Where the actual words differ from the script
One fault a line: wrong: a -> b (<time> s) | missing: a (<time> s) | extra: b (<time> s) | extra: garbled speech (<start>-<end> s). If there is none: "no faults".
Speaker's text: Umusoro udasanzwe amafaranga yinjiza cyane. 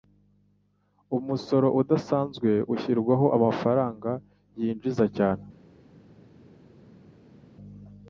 extra: ushyirwaho (2.7 s)